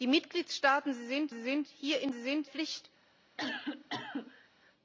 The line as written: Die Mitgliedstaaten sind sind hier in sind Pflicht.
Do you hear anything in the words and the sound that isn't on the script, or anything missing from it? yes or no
yes